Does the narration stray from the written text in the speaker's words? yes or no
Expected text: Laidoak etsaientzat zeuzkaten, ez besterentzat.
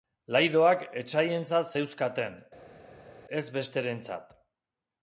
no